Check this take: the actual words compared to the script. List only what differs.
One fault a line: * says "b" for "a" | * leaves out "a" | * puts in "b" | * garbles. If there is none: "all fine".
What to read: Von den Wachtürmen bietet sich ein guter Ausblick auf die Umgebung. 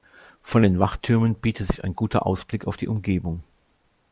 all fine